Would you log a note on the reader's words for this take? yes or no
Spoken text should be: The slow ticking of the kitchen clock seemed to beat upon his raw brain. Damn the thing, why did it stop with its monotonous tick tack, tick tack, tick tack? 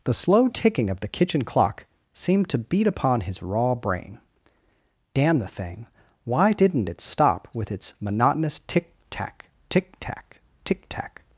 yes